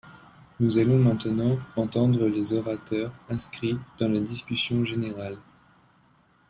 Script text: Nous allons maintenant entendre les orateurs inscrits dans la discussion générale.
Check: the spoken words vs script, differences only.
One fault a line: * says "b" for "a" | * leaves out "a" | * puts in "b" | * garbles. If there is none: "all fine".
all fine